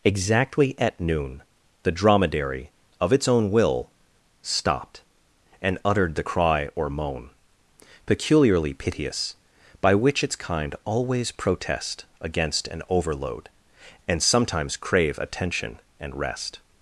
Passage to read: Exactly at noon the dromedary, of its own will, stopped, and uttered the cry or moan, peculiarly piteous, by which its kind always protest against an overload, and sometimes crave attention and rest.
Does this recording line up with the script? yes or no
yes